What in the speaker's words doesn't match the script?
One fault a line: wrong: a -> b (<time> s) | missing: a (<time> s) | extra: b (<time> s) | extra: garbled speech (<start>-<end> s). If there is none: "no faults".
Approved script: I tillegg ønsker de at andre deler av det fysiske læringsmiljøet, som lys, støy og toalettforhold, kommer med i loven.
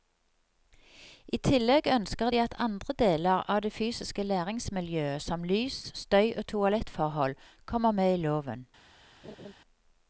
no faults